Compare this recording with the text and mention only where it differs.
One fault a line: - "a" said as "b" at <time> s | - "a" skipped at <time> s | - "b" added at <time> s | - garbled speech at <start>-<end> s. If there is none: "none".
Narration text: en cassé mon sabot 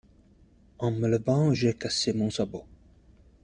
- "me levant j'ai" added at 0.9 s